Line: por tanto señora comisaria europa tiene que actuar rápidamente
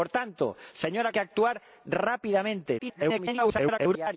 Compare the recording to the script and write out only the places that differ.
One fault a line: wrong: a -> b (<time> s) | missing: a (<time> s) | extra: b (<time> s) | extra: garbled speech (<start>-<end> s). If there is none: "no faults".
missing: comisaria europa tiene (1.1 s)
extra: garbled speech (2.8-4.2 s)